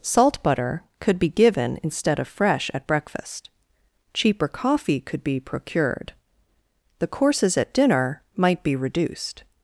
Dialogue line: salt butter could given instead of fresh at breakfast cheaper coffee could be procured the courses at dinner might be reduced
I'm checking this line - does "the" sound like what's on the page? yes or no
yes